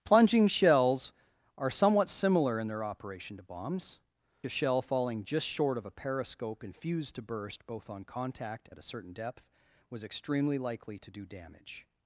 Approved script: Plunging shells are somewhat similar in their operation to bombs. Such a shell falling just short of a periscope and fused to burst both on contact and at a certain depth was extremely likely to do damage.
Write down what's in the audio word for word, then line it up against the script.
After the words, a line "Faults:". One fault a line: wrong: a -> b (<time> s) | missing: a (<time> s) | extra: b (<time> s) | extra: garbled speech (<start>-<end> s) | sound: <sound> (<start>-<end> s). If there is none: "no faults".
Plunging shells are somewhat similar in their operation to bombs. A shell falling just short of a periscope and fused to burst both on contact at a certain depth was extremely likely to do damage.
Faults:
missing: Such (4.0 s)
missing: and (8.7 s)